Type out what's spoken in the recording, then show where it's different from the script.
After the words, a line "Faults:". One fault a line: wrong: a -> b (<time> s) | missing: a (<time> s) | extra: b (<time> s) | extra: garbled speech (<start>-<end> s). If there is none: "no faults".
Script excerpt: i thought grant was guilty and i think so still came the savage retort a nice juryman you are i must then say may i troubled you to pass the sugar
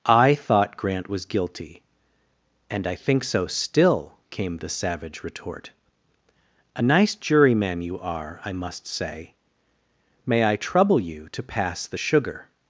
i thought grant was guilty and i think so still came the savage retort a nice juryman you are i must say may i trouble you to pass the sugar
Faults:
missing: then (8.9 s)
wrong: troubled -> trouble (10.5 s)